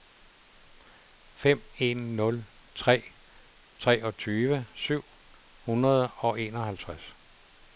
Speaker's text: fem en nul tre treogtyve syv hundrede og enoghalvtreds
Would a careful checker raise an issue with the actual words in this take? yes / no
no